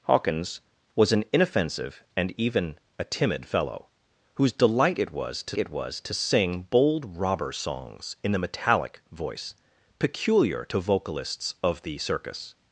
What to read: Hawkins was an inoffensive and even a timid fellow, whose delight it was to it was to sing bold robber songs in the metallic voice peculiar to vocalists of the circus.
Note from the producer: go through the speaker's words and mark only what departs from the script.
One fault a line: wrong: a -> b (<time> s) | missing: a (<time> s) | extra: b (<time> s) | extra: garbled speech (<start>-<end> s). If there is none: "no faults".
no faults